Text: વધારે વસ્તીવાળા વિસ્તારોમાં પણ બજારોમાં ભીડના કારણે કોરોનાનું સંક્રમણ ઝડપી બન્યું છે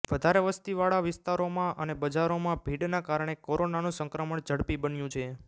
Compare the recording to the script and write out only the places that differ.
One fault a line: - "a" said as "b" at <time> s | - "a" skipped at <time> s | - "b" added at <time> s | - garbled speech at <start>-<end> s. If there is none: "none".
- "પણ" said as "અને" at 1.8 s